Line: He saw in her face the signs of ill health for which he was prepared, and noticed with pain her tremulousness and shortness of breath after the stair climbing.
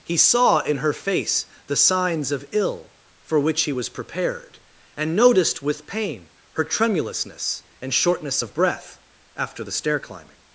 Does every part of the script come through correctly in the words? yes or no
no